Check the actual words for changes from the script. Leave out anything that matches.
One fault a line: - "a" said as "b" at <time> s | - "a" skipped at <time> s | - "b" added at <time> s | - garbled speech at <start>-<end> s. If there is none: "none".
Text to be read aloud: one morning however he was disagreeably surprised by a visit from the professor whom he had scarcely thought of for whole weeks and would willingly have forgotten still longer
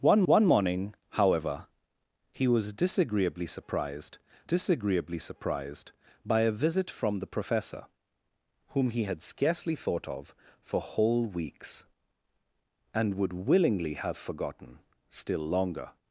- "one" added at 0.3 s
- "disagreeably surprised" added at 4.4 s